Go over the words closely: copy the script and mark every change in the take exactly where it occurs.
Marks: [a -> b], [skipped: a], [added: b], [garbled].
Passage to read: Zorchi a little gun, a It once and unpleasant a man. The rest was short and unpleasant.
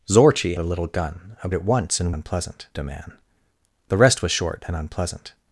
Zorchi a little gun, a It once and unpleasant a man. The rest was short and unpleasant.